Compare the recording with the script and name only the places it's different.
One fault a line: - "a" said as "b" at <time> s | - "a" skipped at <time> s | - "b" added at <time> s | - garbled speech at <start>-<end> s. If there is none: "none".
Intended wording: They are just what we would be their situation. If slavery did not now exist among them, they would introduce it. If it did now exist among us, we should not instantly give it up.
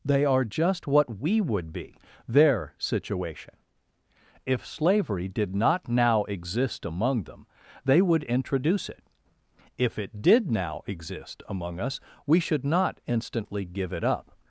none